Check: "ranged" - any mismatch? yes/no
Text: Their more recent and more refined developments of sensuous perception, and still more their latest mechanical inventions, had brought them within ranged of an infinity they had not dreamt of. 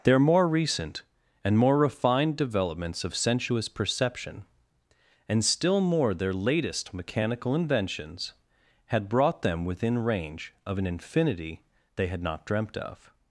yes